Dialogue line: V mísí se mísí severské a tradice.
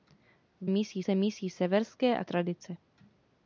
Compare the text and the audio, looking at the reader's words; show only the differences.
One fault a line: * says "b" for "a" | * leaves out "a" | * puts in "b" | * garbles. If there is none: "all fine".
all fine